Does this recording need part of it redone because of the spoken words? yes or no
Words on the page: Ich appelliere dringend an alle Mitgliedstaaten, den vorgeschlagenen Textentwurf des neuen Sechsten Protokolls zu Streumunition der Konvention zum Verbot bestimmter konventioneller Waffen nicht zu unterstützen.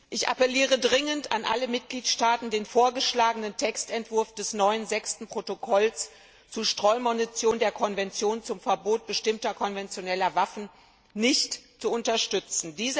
no